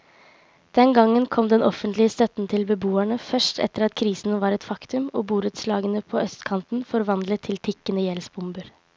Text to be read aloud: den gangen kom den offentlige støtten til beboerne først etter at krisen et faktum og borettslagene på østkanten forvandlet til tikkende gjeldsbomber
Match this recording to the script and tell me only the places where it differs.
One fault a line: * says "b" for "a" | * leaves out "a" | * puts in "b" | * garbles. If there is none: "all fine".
* puts in "var"